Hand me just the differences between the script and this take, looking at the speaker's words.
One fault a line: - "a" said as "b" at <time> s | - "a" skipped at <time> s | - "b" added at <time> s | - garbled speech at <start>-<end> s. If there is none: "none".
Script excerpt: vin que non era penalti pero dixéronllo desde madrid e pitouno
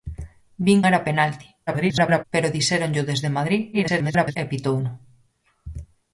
- "que non" skipped at 0.8 s
- garbled speech at 1.7-2.2 s
- garbled speech at 3.7-4.4 s